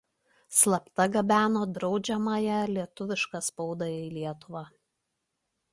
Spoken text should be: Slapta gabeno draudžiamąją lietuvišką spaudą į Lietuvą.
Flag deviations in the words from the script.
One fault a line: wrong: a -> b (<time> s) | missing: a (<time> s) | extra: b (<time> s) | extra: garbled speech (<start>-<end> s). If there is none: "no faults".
no faults